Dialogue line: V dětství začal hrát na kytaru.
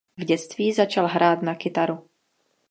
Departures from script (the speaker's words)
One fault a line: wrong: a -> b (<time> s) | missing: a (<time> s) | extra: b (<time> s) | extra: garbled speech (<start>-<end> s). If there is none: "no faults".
no faults